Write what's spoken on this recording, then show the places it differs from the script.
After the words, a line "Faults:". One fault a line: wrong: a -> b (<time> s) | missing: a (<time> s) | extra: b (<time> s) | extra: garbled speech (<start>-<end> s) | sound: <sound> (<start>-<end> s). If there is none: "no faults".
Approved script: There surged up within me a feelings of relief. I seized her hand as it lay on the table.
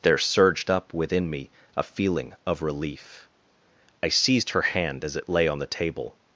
There surged up within me a feeling of relief. I seized her hand as it lay on the table.
Faults:
wrong: feelings -> feeling (1.8 s)